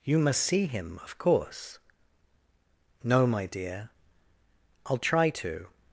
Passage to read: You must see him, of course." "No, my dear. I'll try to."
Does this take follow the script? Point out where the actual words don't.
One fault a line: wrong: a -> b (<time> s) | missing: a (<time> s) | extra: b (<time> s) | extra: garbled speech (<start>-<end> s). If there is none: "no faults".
no faults